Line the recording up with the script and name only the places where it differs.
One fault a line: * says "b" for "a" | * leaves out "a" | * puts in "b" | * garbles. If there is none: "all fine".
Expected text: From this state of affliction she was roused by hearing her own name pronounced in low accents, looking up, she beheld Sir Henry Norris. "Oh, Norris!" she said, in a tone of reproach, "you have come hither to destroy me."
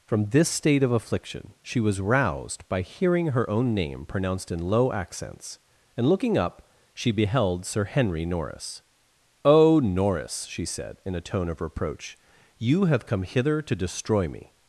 * puts in "and"